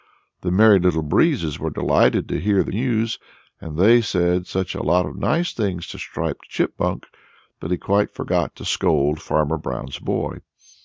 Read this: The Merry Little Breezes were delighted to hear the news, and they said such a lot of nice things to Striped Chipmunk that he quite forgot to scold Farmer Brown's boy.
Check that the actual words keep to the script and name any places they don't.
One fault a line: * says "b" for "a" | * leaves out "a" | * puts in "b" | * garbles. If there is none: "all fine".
all fine